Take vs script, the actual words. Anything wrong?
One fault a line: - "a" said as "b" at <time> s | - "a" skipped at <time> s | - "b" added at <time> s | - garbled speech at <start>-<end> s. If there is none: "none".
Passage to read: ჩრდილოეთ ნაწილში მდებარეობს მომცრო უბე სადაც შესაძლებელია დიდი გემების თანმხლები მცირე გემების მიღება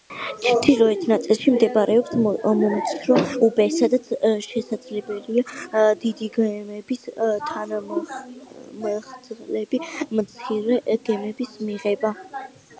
none